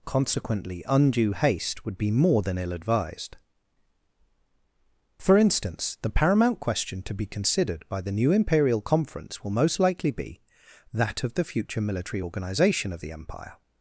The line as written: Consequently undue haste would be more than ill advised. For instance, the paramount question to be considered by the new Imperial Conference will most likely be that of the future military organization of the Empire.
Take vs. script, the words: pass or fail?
pass